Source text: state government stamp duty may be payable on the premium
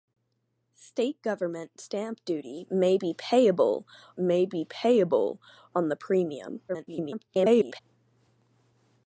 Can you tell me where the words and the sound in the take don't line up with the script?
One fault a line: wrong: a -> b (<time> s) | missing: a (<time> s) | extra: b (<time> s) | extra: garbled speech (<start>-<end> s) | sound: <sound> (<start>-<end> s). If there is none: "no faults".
extra: may be payable (4.2 s)
extra: garbled speech (6.7-7.8 s)